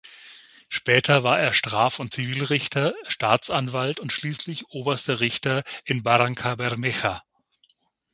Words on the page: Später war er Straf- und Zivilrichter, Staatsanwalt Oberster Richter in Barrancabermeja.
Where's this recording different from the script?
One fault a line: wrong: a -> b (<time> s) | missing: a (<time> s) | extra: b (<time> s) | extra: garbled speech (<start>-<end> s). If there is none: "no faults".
extra: und schließlich (4.0 s)